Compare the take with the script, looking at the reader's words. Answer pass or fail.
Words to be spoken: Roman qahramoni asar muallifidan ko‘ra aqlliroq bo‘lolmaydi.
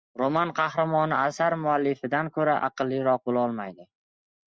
pass